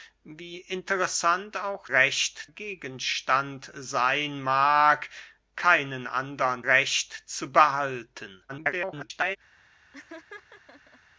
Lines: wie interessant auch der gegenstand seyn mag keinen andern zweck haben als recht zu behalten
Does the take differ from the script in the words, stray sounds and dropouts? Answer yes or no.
yes